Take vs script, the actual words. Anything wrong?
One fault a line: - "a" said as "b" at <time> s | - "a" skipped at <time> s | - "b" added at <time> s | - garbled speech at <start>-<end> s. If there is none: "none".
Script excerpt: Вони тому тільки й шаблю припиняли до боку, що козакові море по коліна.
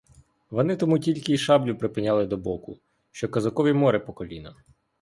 none